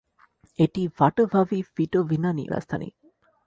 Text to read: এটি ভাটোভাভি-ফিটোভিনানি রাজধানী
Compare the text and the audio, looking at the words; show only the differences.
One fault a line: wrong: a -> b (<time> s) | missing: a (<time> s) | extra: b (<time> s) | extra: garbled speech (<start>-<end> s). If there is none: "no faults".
no faults